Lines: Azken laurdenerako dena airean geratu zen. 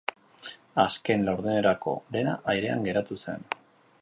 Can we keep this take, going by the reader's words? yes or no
yes